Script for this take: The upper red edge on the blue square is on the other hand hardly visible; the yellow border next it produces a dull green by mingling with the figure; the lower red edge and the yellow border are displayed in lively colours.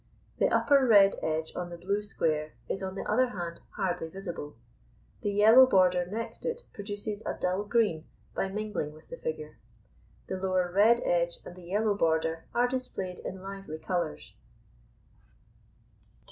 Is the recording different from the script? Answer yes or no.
no